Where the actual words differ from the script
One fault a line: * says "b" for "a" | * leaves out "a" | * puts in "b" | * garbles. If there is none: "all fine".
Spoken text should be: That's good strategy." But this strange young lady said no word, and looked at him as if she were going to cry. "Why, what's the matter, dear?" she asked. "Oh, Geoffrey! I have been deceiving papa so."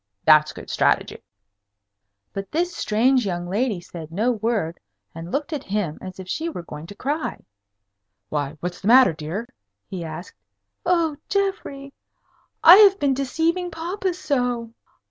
* says "he" for "she"